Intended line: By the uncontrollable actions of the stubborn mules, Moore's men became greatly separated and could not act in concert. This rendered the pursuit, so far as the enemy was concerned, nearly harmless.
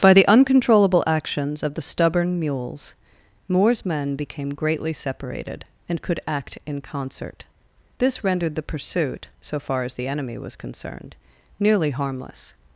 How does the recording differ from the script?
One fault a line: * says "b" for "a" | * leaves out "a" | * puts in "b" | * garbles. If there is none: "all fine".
* leaves out "not"